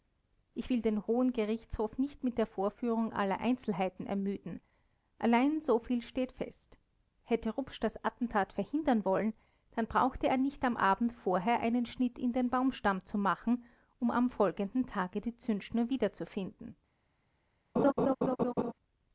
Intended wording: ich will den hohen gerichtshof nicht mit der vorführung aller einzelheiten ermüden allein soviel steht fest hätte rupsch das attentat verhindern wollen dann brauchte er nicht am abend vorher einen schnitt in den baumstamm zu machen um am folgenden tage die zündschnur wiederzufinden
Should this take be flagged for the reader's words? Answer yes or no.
no